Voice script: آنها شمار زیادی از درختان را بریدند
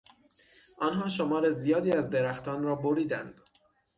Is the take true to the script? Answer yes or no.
yes